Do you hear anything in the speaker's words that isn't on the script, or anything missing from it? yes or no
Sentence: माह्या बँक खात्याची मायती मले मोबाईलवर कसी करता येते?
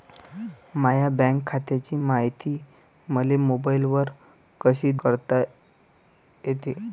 no